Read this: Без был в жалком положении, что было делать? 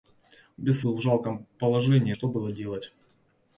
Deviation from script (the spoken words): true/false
false